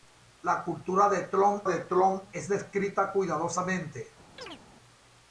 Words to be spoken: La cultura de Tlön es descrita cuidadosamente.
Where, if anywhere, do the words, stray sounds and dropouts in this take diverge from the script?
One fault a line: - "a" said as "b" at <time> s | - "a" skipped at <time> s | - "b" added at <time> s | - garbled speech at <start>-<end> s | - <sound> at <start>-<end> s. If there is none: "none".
- "de Tlön" added at 1.7 s
- chirp at 4.4-4.6 s